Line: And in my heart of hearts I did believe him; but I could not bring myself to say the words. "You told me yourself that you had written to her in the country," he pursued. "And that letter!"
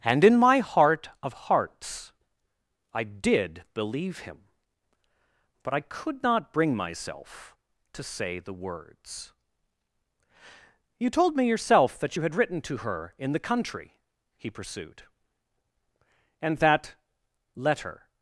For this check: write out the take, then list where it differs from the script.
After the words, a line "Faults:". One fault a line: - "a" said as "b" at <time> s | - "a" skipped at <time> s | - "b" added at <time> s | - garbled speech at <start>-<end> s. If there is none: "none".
And in my heart of hearts I did believe him; but I could not bring myself to say the words. "You told me yourself that you had written to her in the country," he pursued. "And that letter!"
Faults:
none